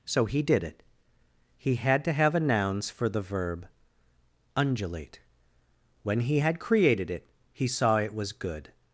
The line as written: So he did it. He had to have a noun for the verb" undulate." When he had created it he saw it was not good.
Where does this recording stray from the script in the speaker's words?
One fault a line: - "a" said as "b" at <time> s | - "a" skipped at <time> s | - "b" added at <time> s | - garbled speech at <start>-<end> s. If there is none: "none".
- "noun" said as "nouns" at 2.4 s
- "not" skipped at 8.3 s